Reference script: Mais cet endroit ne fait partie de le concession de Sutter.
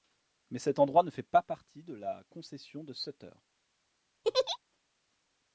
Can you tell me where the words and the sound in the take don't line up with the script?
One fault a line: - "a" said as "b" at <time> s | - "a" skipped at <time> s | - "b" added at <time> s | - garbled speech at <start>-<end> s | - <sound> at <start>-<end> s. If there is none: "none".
- "pas" added at 1.2 s
- "le" said as "la" at 1.9 s
- laugh at 4.2-4.6 s